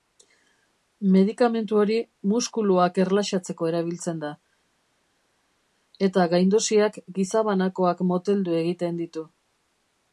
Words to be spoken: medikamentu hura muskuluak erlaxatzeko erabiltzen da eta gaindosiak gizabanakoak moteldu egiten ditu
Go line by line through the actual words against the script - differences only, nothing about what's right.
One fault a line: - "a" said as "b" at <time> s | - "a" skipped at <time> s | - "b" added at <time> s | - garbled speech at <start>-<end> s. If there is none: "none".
- "hura" said as "hori" at 1.8 s